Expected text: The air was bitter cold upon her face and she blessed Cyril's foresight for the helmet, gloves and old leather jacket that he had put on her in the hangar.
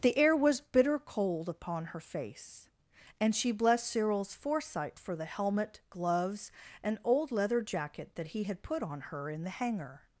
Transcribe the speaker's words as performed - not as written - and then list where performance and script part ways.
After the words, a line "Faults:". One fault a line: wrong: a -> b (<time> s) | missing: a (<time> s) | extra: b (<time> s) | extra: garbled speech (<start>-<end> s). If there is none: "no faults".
The air was bitter cold upon her face and she blessed Cyril's foresight for the helmet, gloves and old leather jacket that he had put on her in the hangar.
Faults:
no faults